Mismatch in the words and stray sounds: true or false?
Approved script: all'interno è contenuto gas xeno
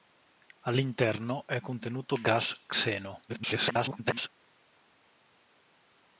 true